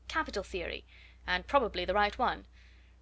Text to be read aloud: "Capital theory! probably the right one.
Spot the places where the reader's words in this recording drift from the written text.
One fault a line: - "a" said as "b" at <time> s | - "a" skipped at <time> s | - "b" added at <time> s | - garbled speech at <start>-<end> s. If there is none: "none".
- "and" added at 1.3 s